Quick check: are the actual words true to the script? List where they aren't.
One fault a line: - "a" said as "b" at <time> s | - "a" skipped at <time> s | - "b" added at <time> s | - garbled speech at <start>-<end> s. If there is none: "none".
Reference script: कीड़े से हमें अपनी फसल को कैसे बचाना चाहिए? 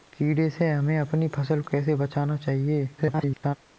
- "को" skipped at 1.6 s
- garbled speech at 3.0-3.6 s